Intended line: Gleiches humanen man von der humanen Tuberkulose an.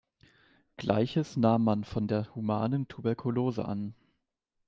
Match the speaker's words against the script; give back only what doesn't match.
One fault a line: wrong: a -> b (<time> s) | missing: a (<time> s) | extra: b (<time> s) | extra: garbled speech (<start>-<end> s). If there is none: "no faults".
wrong: humanen -> nahm (1.3 s)